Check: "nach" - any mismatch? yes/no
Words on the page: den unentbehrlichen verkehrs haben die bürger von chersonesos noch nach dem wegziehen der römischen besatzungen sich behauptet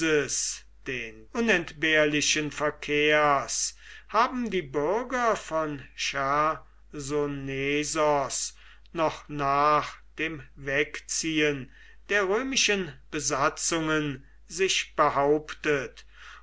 no